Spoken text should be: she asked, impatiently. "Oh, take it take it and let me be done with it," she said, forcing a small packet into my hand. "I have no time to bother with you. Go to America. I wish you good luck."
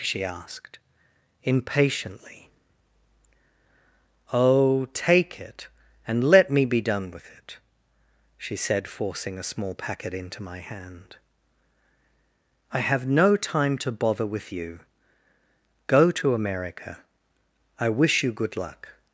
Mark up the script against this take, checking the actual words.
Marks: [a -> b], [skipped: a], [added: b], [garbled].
she asked, impatiently. "Oh, take it [skipped: take it] and let me be done with it," she said, forcing a small packet into my hand. "I have no time to bother with you. Go to America. I wish you good luck."